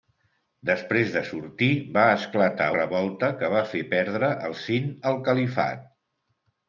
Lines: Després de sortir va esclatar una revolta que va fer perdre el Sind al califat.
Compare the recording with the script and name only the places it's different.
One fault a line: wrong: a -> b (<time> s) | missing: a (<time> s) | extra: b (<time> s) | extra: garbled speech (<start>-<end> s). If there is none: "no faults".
missing: una (2.7 s)